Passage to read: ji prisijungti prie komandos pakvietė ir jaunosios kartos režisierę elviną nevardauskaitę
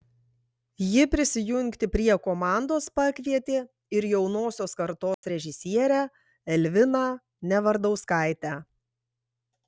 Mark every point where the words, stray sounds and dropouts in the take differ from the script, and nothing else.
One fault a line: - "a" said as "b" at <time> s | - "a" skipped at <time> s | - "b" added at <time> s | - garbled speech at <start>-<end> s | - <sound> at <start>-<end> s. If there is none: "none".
- dropout at 5.1-5.2 s